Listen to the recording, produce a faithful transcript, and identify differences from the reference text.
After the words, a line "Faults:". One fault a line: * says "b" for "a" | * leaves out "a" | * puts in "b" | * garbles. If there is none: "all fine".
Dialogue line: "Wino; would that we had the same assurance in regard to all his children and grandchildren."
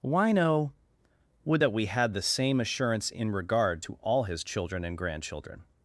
"Wino; would that we had the same assurance in regard to all his children and grandchildren."
Faults:
all fine